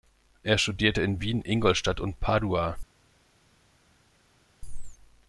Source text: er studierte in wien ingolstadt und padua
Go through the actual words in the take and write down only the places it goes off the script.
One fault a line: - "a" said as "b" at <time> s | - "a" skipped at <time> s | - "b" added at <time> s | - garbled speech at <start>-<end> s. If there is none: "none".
none